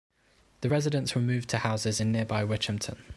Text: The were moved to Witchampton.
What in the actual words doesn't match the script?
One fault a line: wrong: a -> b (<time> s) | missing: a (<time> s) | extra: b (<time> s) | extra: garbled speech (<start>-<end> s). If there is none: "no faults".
extra: residents (0.7 s)
extra: houses in nearby (1.5 s)